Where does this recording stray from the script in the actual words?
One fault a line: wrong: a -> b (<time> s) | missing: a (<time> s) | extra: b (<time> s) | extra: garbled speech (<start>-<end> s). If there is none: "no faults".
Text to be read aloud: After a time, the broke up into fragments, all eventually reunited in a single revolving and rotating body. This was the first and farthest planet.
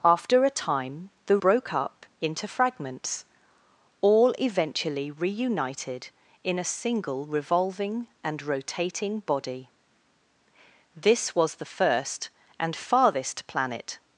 no faults